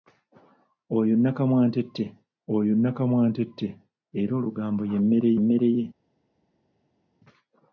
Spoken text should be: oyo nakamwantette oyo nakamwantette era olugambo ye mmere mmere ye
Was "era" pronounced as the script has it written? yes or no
yes